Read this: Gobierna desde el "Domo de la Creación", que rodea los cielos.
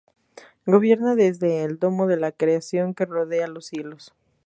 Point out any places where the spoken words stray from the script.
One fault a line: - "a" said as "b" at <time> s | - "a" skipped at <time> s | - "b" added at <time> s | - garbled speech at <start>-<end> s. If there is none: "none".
none